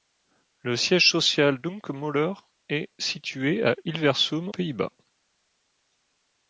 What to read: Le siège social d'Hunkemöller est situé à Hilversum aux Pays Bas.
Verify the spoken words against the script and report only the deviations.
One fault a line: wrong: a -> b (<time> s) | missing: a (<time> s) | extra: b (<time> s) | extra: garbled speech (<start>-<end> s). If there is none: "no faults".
missing: aux (4.5 s)